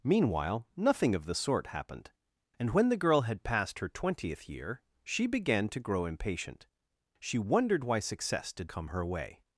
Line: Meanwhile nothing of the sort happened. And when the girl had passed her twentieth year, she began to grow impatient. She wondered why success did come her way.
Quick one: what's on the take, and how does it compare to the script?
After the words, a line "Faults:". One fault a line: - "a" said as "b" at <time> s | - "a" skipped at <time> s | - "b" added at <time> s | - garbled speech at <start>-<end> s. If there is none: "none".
Meanwhile nothing of the sort happened. And when the girl had passed her twentieth year, she began to grow impatient. She wondered why success did come her way.
Faults:
none